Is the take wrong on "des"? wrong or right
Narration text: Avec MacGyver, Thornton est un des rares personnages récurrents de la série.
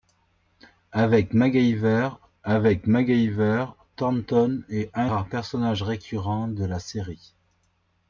wrong